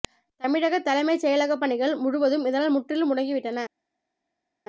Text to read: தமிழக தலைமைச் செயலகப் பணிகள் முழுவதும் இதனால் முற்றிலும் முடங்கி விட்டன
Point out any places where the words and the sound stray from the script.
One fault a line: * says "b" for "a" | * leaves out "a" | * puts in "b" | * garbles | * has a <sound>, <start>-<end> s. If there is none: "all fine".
all fine